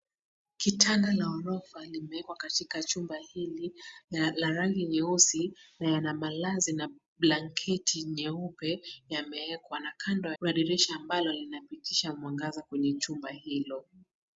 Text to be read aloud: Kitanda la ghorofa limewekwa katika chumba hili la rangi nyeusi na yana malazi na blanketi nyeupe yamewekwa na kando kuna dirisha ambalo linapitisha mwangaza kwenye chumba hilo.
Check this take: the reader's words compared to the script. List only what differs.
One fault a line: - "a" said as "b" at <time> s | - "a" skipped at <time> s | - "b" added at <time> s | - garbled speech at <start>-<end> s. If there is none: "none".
none